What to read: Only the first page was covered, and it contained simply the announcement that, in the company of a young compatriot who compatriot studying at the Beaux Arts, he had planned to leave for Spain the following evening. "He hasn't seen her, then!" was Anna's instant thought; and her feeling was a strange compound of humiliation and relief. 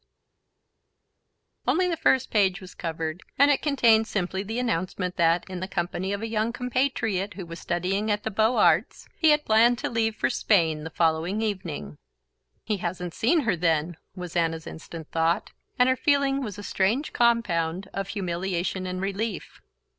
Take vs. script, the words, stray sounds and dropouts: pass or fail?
fail